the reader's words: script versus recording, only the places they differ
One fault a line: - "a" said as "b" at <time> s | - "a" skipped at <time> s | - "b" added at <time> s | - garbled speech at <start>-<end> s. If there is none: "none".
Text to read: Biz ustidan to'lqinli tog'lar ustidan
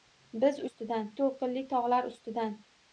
none